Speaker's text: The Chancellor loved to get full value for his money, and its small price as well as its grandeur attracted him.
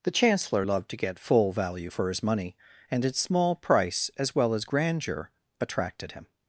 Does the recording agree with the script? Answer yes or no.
no